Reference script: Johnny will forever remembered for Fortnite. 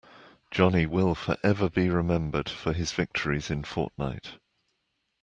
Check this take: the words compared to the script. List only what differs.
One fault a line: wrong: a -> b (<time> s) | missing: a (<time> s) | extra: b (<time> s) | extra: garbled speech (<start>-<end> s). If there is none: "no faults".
extra: be (1.7 s)
extra: his victories in (2.7 s)